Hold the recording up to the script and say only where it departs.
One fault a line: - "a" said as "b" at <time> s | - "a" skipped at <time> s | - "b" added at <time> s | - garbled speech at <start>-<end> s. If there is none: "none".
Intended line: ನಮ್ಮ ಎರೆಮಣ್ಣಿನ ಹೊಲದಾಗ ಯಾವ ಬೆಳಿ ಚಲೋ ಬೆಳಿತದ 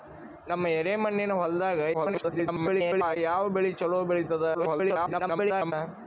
- garbled speech at 1.9-3.2 s
- garbled speech at 4.5-5.7 s